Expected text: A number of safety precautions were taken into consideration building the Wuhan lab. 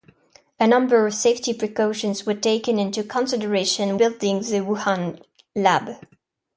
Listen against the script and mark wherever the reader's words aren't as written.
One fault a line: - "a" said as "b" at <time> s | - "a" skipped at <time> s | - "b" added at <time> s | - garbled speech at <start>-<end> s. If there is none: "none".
none